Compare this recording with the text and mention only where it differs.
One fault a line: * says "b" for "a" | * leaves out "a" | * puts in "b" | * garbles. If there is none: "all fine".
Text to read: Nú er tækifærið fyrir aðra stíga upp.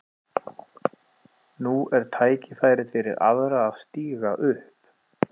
* puts in "að"